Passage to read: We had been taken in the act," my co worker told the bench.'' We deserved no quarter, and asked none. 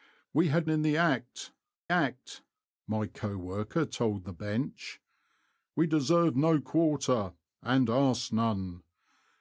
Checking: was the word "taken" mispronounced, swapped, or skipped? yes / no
yes